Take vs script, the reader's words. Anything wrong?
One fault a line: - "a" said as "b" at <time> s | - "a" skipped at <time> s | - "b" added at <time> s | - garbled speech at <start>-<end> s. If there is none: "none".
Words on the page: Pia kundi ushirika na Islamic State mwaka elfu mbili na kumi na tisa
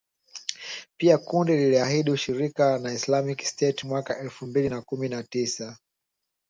- "liliahidi" added at 1.6 s